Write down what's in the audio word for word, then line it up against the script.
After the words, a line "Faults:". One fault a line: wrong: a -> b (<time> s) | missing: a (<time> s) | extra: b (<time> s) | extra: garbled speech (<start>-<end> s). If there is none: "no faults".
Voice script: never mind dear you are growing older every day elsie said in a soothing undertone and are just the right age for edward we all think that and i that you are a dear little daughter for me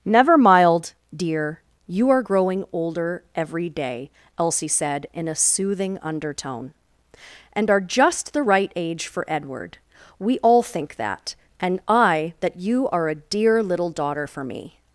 never mild dear you are growing older every day elsie said in a soothing undertone and are just the right age for edward we all think that and i that you are a dear little daughter for me
Faults:
wrong: mind -> mild (0.3 s)